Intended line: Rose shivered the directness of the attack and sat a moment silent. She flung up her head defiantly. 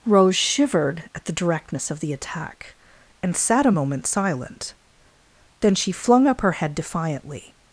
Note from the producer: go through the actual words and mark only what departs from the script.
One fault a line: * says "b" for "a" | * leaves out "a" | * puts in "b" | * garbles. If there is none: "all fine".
* puts in "at"
* puts in "Then"